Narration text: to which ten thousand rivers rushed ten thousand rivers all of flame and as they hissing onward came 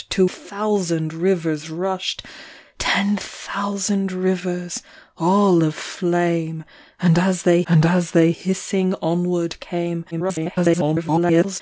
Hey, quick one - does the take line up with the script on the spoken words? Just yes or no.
no